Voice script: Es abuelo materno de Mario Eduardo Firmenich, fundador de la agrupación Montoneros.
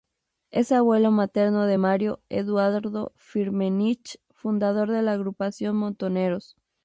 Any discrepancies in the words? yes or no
no